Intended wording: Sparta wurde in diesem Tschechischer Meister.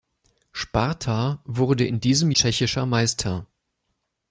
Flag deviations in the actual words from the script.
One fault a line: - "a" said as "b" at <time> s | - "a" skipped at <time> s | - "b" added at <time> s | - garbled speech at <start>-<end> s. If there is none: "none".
none